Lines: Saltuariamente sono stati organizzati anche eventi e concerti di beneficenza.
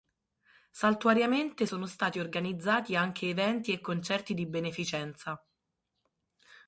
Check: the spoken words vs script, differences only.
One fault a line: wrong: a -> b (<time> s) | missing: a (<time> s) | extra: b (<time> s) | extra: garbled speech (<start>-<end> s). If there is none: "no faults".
no faults